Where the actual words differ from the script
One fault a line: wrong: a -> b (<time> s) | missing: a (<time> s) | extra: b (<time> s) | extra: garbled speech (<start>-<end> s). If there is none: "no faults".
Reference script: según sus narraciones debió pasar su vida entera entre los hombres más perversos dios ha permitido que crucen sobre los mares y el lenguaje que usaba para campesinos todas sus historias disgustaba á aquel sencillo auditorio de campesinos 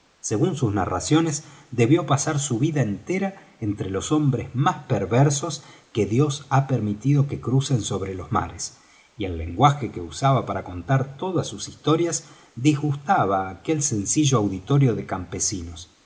extra: que (5.9 s)
wrong: campesinos -> contar (10.6 s)